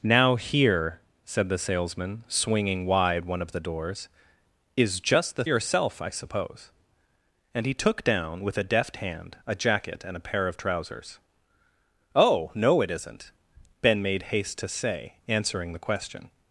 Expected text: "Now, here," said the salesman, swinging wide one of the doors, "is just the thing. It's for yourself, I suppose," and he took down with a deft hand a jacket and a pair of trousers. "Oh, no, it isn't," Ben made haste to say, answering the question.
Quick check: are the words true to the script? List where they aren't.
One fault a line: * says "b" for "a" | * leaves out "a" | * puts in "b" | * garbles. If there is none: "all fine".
* leaves out "thing It's for"